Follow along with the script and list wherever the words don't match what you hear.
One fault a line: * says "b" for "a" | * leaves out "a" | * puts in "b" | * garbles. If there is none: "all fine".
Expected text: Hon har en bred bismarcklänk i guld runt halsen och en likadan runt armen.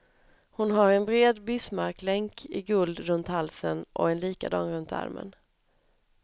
all fine